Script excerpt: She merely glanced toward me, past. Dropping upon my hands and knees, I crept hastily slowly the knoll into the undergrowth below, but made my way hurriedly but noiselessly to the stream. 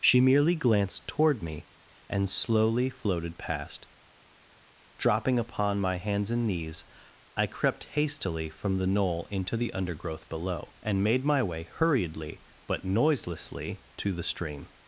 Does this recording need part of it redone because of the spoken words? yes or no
yes